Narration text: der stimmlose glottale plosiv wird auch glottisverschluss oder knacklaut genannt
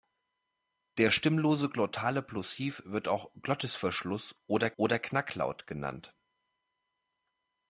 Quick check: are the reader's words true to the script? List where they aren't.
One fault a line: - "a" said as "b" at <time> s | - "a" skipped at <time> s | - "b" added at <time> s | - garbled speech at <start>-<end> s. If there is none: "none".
- "oder" added at 4.8 s